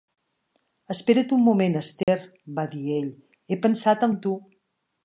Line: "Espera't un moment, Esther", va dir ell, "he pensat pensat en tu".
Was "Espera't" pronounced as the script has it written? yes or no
yes